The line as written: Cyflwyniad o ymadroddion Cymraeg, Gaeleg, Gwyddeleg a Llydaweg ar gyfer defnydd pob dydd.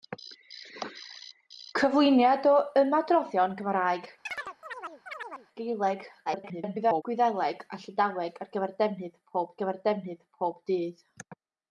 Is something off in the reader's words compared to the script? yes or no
yes